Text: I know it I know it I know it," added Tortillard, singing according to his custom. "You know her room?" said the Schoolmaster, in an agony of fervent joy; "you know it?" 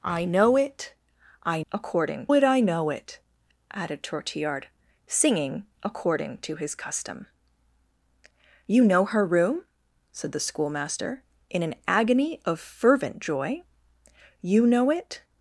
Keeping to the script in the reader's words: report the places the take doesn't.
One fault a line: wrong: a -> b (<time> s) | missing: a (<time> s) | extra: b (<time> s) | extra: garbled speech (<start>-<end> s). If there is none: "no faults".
wrong: know -> according (1.7 s)